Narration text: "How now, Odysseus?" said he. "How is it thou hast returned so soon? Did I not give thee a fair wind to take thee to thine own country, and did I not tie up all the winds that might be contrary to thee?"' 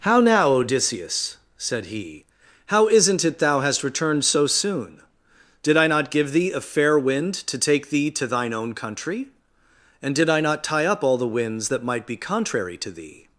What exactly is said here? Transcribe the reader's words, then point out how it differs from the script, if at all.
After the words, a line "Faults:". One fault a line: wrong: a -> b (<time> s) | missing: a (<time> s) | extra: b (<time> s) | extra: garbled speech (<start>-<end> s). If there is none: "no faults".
"How now, Odysseus?" said he. "How isn't it thou hast returned so soon? Did I not give thee a fair wind to take thee to thine own country, and did I not tie up all the winds that might be contrary to thee?"'
Faults:
wrong: is -> isn't (2.9 s)